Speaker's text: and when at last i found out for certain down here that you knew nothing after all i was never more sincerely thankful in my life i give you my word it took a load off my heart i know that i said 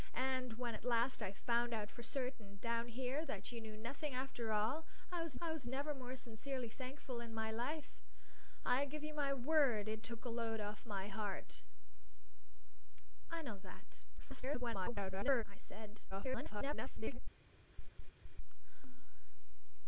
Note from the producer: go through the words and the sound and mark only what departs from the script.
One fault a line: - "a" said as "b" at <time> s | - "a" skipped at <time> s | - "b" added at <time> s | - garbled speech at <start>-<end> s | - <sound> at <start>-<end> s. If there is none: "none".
- "i was" added at 5.4 s
- garbled speech at 14.2-15.4 s
- garbled speech at 16.1-17.2 s
- laugh at 17.7-18.4 s